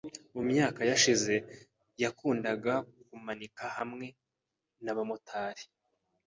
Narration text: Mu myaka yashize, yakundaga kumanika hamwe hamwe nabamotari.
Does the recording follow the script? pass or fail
fail